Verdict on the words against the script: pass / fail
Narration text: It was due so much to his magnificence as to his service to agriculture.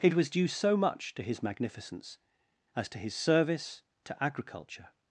pass